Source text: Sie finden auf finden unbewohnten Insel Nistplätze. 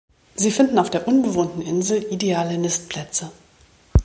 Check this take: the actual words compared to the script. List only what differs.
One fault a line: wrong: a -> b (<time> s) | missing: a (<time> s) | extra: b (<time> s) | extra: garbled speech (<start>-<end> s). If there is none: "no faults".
wrong: finden -> der (0.9 s)
extra: ideale (2.1 s)